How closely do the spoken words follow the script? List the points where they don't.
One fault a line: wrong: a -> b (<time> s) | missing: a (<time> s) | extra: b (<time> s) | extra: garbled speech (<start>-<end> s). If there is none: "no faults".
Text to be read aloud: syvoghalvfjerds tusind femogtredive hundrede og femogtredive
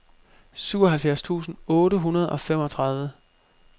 wrong: femogtredive -> otte (1.7 s)